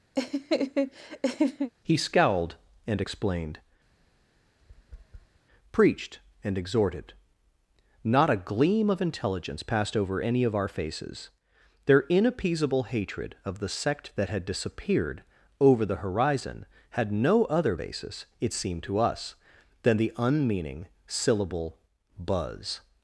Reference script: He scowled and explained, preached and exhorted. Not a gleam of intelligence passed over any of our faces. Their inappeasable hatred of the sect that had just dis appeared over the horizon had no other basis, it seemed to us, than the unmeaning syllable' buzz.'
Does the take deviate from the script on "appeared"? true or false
true